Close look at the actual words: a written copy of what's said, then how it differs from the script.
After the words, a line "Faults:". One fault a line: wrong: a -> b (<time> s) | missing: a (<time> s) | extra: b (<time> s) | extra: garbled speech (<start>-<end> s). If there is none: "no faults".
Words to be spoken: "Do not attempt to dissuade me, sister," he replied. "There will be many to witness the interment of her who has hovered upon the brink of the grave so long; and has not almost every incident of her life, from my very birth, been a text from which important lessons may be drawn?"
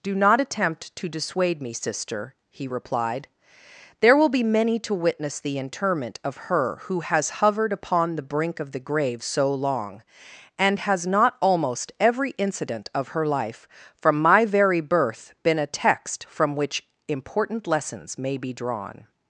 "Do not attempt to dissuade me, sister," he replied. "There will be many to witness the interment of her who has hovered upon the brink of the grave so long; and has not almost every incident of her life, from my very birth, been a text from which important lessons may be drawn?"
Faults:
no faults